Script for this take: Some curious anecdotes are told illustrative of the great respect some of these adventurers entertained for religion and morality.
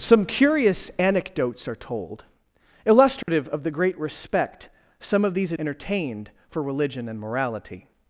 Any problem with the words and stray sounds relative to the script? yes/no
yes